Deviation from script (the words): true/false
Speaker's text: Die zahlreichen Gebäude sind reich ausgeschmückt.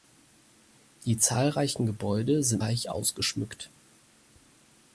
false